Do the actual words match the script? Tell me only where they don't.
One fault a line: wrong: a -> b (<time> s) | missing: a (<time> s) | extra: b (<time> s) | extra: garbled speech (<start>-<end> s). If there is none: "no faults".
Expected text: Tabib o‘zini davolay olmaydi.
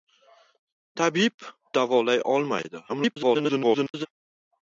missing: o‘zini (1.4 s)
extra: garbled speech (2.9-4.1 s)